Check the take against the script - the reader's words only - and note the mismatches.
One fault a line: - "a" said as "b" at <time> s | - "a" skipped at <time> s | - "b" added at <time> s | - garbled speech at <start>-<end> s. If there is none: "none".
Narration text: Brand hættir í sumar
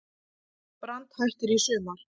none